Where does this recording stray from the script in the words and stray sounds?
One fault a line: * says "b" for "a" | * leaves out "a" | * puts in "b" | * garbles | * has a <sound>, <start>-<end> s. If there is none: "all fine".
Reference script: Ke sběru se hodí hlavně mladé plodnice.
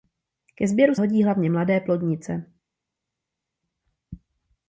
* leaves out "se"